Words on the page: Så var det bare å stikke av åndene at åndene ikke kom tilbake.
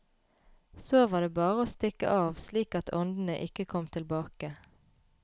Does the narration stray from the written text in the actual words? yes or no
yes